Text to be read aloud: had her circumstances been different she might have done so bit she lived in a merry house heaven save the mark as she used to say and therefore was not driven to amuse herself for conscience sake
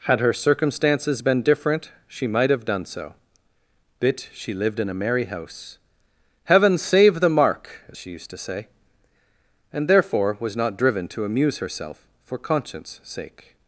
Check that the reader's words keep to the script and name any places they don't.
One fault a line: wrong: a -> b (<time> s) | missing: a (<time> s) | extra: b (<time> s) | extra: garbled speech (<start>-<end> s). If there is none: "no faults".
no faults